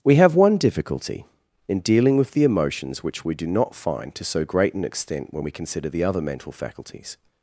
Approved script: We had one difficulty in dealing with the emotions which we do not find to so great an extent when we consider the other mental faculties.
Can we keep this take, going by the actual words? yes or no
no